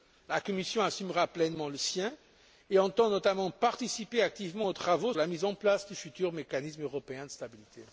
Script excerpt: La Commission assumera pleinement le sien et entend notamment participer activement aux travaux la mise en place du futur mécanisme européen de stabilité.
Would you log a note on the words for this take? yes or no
no